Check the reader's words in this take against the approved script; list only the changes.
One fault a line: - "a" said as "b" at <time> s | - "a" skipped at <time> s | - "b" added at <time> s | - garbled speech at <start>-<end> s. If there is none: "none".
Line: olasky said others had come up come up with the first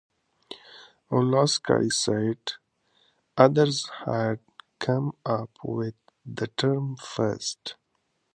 - "come up" skipped at 5.5 s
- "term" added at 6.6 s